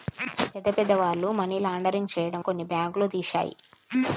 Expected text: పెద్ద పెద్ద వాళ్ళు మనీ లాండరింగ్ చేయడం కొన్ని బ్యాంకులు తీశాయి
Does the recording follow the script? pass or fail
pass